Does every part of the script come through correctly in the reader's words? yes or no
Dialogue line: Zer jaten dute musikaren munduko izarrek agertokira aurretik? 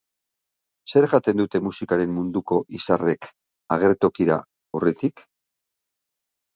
yes